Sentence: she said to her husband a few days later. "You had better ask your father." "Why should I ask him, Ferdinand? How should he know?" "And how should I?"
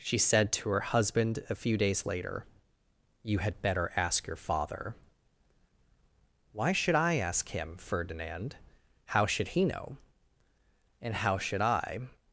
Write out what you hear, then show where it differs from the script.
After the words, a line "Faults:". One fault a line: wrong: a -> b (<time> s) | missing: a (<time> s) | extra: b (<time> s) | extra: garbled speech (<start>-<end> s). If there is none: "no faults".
she said to her husband a few days later. "You had better ask your father." "Why should I ask him, Ferdinand? How should he know?" "And how should I?"
Faults:
no faults